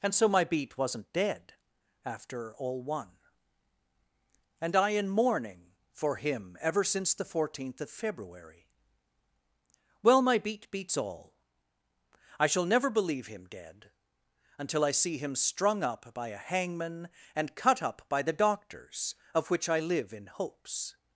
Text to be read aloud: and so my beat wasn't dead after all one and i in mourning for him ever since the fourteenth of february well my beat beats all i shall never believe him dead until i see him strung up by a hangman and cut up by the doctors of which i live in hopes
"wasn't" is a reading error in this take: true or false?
false